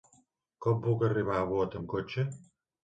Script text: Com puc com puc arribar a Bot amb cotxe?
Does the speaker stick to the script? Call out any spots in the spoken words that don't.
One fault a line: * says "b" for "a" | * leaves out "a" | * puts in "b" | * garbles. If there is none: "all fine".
* leaves out "com puc"